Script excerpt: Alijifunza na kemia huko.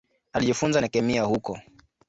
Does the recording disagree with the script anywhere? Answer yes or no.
no